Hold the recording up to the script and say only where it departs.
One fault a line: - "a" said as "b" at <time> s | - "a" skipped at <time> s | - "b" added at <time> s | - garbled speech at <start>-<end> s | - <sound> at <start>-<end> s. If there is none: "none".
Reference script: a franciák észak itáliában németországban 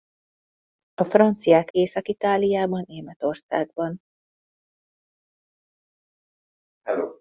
none